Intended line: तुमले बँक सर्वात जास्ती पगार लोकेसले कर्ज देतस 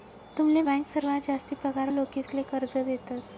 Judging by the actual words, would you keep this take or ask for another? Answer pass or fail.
pass